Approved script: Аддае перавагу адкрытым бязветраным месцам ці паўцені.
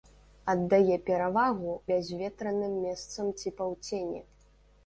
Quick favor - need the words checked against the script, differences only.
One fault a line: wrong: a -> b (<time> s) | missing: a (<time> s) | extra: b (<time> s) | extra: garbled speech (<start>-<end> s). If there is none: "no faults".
missing: адкрытым (1.8 s)